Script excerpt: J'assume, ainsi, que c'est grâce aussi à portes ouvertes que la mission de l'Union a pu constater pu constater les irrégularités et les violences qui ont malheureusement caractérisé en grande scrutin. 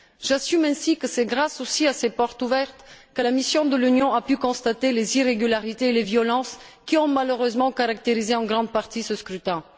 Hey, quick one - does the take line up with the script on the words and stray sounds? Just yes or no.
no